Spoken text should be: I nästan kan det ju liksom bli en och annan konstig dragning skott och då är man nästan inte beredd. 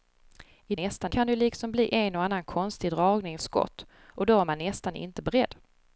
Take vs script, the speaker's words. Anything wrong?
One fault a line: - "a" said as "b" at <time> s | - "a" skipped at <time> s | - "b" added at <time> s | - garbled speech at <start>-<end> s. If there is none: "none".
none